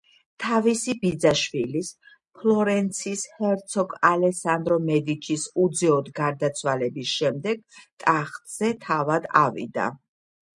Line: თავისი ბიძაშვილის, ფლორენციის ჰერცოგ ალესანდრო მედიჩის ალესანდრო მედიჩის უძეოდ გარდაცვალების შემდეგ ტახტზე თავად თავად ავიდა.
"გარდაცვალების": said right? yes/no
yes